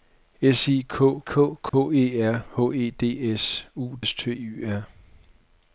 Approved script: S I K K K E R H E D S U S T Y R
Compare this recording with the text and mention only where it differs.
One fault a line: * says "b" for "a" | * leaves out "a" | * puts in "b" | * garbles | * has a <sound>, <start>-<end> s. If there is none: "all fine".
* has a dropout, 1.7-1.7 s